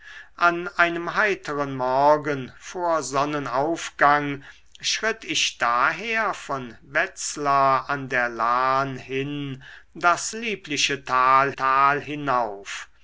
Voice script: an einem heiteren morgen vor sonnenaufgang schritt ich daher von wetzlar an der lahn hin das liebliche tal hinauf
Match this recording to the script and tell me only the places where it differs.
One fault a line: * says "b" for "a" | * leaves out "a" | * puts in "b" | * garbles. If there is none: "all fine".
* puts in "tal"